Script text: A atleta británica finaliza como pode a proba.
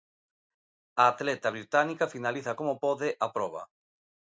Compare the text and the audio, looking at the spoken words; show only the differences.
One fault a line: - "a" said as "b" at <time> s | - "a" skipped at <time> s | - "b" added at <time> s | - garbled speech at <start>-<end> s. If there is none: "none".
none